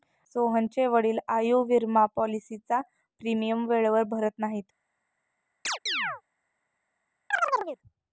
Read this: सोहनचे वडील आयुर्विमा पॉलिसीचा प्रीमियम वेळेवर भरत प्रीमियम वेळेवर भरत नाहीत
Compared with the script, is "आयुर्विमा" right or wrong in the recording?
right